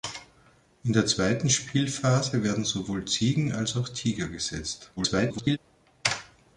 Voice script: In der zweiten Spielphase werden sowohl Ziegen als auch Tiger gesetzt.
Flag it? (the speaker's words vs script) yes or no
yes